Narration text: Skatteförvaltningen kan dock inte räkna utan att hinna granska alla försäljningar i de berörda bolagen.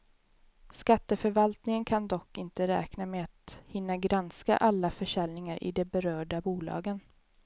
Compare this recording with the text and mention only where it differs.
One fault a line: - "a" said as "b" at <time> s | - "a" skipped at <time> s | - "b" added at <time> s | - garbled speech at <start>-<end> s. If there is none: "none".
- "utan" said as "med" at 3.0 s